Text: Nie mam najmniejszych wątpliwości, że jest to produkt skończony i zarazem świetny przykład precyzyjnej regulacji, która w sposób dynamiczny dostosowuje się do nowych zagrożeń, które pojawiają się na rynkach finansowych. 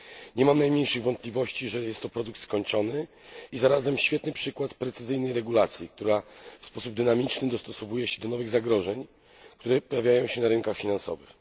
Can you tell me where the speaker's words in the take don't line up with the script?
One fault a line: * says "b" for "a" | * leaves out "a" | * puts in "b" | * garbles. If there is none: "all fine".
all fine